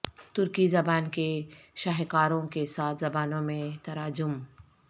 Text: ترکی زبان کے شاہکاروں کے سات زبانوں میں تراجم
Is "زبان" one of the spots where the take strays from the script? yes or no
no